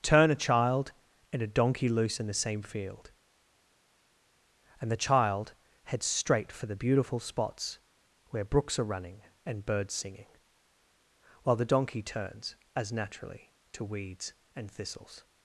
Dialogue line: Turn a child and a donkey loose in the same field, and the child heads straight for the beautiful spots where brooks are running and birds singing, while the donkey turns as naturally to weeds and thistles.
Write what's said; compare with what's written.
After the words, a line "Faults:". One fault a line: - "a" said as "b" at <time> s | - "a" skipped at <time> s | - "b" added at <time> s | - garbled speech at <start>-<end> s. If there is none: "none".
Turn a child and a donkey loose in the same field, and the child heads straight for the beautiful spots where brooks are running and birds singing, while the donkey turns as naturally to weeds and thistles.
Faults:
none